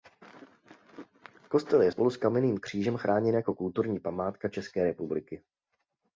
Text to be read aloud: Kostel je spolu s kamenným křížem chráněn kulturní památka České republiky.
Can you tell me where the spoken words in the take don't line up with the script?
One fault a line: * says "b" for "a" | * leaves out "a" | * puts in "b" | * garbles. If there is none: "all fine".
* puts in "jako"